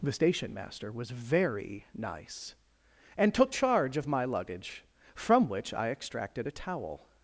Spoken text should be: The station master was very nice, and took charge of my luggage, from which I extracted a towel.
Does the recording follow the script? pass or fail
pass